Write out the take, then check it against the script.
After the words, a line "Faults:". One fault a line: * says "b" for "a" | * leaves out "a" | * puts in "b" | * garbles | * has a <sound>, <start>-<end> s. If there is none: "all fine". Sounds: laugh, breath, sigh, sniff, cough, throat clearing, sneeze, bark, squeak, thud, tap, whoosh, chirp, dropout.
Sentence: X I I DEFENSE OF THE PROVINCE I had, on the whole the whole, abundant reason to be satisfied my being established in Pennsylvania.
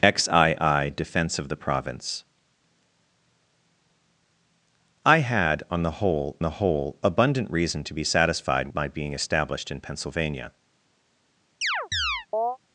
X I I DEFENSE OF THE PROVINCE I had, on the whole the whole, abundant reason to be satisfied my being established in Pennsylvania.
Faults:
* has a chirp, 11.6-12.6 s